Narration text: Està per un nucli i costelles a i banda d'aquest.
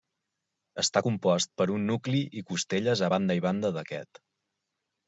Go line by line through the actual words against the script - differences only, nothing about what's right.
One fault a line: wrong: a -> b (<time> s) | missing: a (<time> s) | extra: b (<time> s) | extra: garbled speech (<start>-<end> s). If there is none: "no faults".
extra: compost (1.1 s)
extra: banda (3.2 s)